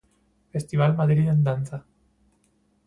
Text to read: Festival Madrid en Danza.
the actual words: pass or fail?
pass